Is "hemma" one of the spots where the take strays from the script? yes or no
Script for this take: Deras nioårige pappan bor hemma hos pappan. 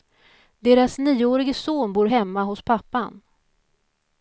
no